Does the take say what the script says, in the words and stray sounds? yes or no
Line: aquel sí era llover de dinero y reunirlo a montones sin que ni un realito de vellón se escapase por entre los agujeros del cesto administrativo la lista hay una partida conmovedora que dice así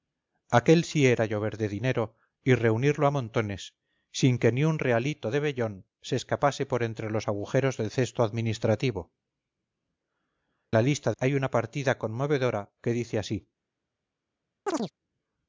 no